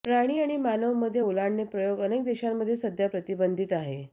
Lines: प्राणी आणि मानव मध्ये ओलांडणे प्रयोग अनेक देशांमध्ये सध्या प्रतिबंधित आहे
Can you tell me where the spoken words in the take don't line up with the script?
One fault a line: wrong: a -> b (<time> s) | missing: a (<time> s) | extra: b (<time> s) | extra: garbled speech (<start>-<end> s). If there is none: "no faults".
no faults